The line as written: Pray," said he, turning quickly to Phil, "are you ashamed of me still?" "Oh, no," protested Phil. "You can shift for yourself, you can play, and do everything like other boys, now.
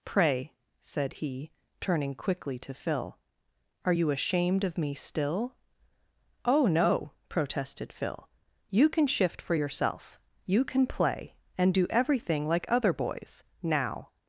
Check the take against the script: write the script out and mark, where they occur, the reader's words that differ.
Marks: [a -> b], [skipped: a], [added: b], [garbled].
Pray," said he, turning quickly to Phil, "are you ashamed of me still?" "Oh, no," protested Phil. "You can shift for yourself, you can play, and do everything like other boys, now.